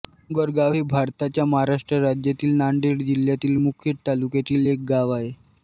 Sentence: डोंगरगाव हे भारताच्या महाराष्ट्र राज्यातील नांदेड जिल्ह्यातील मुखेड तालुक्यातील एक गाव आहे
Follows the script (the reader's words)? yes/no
yes